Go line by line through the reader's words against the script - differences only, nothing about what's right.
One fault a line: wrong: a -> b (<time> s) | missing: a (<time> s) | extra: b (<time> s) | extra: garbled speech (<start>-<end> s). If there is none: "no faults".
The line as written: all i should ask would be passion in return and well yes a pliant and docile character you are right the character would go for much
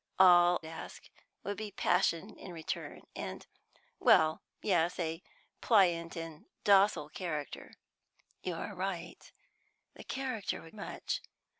missing: i should (0.6 s)
missing: go for (10.7 s)